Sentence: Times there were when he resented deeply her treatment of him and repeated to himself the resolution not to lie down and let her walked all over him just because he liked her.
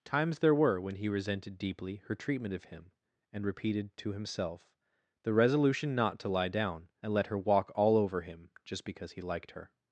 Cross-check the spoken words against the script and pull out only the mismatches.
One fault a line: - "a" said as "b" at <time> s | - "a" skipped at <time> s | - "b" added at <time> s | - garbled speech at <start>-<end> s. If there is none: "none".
- "walked" said as "walk" at 7.4 s